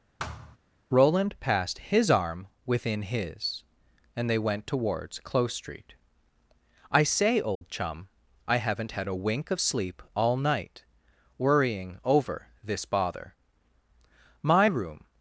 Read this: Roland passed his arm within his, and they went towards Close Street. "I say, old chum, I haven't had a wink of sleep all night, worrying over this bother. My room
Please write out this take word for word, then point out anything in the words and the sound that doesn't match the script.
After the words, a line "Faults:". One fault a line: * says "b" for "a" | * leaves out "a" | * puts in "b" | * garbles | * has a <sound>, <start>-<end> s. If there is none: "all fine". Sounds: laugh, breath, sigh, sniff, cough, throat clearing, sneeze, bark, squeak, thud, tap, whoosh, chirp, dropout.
Roland passed his arm within his, and they went towards Close Street. "I say, old chum, I haven't had a wink of sleep all night, worrying over this bother. My room
Faults:
* has a thud, 0.2-0.6 s
* has a dropout, 7.6-7.6 s